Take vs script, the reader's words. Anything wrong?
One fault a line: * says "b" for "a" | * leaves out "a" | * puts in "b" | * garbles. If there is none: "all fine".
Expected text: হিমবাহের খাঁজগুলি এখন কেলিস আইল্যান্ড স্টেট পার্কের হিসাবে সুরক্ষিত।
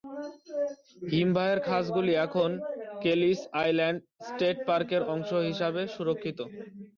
* puts in "অংশ"